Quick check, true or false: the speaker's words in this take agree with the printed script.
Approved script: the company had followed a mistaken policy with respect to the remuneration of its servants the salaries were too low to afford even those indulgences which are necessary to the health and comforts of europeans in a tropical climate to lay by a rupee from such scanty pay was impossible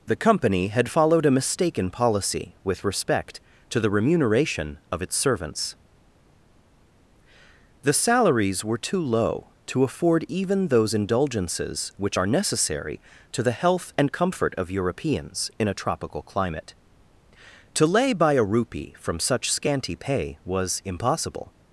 false